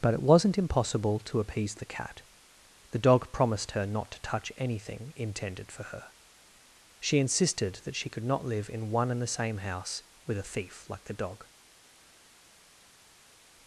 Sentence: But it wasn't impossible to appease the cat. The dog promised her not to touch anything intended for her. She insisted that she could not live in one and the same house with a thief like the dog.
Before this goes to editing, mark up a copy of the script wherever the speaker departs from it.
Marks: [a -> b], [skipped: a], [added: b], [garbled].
But it wasn't impossible to appease the cat. The dog promised her not to touch anything intended for her. She insisted that she could not live in one and the same house with a thief like the dog.